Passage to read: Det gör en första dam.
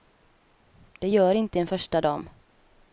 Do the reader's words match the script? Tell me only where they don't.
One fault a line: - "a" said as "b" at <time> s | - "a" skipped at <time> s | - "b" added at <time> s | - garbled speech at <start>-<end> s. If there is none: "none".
- "inte" added at 1.3 s